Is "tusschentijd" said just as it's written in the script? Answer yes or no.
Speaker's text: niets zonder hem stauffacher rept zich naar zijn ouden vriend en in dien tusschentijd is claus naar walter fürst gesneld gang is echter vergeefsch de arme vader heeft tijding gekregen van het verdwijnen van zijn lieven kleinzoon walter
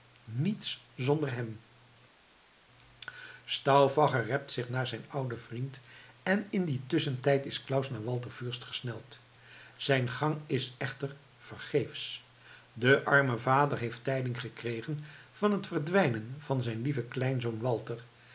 yes